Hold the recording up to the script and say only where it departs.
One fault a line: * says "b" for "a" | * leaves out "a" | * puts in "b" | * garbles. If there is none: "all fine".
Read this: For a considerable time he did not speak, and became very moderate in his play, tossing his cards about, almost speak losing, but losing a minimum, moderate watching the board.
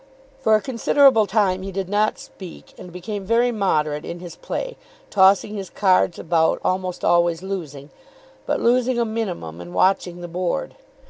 * says "always" for "speak"
* says "and" for "moderate"